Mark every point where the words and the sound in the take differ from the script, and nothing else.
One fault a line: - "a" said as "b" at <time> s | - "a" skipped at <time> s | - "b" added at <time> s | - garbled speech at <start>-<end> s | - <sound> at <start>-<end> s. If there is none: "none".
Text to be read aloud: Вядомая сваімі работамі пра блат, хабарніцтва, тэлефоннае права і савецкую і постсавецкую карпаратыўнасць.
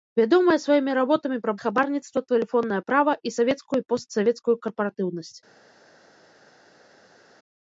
- "блат" skipped at 1.5 s